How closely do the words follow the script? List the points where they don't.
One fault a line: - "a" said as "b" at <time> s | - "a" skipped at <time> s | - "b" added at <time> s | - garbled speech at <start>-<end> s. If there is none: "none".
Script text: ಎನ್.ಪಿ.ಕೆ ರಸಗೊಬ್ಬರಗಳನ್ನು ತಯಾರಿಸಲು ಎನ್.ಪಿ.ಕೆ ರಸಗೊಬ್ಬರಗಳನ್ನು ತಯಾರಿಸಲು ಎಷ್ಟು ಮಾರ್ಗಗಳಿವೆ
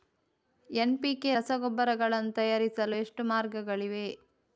- "ಎನ್.ಪಿ.ಕೆ ರಸಗೊಬ್ಬರಗಳನ್ನು ತಯಾರಿಸಲು" skipped at 3.0 s